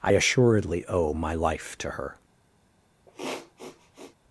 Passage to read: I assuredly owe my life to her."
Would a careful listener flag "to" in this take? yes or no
no